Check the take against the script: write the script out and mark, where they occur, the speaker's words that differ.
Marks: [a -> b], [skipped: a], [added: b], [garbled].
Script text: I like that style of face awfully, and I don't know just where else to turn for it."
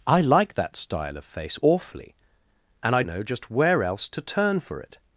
I like that style of face awfully, and I [skipped: don't] know just where else to turn for it."